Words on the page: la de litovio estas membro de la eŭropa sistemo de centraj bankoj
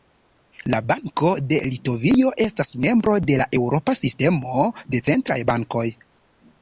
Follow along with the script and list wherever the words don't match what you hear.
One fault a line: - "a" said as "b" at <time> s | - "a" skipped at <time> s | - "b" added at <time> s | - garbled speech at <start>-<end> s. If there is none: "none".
- "banko" added at 0.9 s